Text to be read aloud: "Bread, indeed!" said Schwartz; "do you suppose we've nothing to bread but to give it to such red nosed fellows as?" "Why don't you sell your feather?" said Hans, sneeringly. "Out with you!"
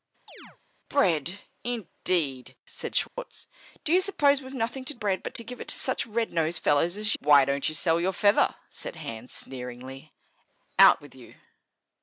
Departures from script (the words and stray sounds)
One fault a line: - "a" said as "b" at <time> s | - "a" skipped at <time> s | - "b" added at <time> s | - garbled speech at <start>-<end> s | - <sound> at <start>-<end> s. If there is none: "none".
- chirp at 0.3-0.6 s
- dropout at 3.1-3.2 s